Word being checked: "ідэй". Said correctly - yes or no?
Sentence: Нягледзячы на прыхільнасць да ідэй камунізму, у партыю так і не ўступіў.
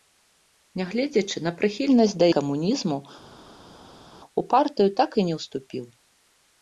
no